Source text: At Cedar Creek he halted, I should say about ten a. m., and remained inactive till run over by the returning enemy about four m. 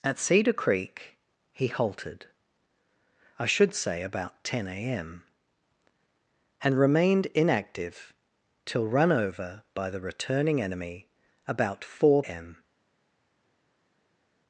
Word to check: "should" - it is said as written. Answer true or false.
true